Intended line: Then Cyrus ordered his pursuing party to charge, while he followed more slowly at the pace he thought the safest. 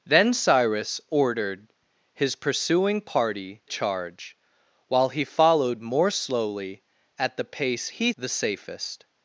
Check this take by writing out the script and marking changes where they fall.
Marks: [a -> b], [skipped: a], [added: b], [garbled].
Then Cyrus ordered his pursuing party [skipped: to] charge, while he followed more slowly at the pace he [skipped: thought] the safest.